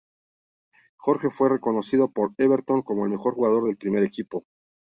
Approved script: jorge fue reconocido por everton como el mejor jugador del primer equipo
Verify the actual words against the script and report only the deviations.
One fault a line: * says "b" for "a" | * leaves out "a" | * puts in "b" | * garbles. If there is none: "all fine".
all fine